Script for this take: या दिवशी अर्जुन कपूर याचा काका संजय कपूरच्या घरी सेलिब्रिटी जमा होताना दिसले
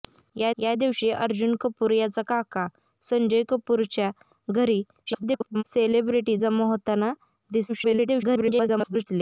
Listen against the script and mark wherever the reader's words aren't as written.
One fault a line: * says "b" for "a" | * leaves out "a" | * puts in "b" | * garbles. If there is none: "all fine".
* puts in "या"
* garbles
* garbles